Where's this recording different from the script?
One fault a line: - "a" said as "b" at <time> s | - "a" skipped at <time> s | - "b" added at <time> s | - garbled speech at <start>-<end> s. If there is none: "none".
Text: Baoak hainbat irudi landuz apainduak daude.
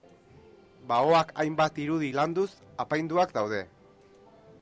none